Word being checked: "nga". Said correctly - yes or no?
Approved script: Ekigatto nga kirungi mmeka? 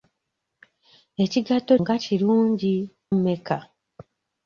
yes